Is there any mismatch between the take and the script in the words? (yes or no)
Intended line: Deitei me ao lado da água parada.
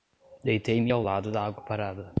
no